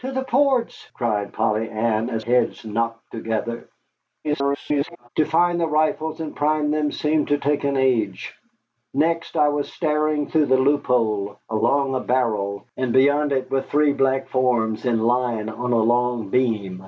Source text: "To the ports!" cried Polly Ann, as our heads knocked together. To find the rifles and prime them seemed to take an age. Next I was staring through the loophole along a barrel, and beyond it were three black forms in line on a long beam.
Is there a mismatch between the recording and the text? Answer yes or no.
yes